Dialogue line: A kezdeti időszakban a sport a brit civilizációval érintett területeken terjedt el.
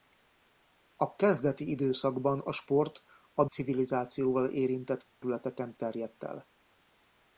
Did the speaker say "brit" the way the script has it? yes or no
no